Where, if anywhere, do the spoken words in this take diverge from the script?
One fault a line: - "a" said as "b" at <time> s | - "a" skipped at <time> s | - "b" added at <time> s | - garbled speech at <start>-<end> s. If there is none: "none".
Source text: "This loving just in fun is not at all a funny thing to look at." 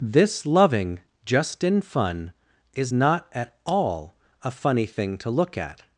none